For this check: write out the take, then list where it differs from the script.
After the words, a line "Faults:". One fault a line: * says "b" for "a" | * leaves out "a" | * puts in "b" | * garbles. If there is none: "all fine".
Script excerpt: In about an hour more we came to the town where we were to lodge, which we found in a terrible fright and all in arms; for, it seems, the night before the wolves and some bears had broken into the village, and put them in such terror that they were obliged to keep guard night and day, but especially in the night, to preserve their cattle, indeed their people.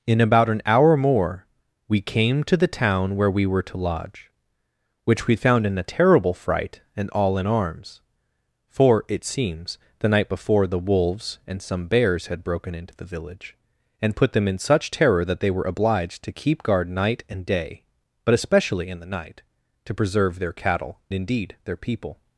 In about an hour more we came to the town where we were to lodge, which we found in a terrible fright and all in arms; for, it seems, the night before the wolves and some bears had broken into the village, and put them in such terror that they were obliged to keep guard night and day, but especially in the night, to preserve their cattle, indeed their people.
Faults:
all fine